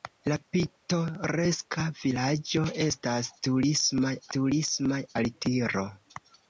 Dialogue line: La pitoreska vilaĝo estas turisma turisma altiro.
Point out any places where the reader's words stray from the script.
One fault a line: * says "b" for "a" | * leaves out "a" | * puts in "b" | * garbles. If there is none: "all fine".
all fine